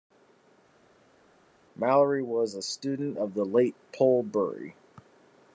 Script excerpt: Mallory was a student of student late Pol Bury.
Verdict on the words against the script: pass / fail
fail